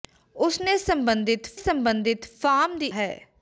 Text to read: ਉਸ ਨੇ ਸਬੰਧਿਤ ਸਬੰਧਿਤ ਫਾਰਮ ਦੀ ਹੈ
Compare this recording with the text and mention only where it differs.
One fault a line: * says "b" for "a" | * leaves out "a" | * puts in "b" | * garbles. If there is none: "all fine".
all fine